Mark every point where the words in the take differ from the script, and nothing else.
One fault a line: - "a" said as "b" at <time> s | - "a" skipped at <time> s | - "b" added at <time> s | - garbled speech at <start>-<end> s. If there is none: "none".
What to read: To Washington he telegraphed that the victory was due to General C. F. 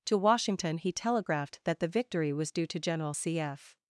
none